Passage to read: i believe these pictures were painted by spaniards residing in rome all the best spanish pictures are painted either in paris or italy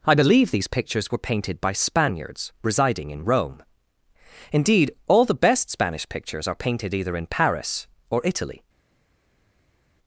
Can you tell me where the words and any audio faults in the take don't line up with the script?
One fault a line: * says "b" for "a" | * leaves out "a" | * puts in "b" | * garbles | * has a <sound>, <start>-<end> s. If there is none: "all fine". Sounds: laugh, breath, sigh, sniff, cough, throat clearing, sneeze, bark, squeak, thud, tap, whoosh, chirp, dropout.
* puts in "indeed"